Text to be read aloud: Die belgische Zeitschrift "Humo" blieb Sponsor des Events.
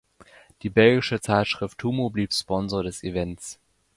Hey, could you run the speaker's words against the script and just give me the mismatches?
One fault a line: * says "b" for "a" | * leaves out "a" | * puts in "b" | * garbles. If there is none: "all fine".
all fine